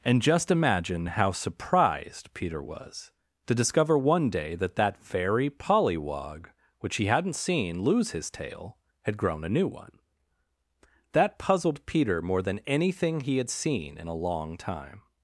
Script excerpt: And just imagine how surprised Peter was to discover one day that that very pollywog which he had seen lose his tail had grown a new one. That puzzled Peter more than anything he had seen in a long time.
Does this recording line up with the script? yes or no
no